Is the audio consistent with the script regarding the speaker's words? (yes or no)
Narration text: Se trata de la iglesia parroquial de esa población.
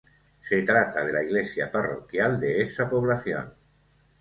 yes